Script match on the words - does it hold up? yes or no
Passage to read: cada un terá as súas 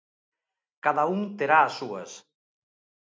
yes